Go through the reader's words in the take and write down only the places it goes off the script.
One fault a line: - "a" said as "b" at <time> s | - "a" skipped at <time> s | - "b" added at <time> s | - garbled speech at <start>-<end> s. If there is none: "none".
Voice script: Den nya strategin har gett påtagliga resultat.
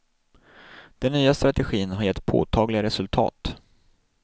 none